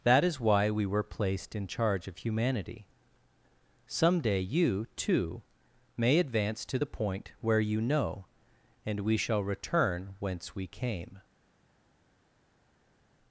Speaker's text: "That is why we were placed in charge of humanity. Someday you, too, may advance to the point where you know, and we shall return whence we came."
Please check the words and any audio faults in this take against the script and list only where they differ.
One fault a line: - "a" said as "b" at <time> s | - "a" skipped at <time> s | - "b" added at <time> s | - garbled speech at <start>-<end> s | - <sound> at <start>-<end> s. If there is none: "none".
none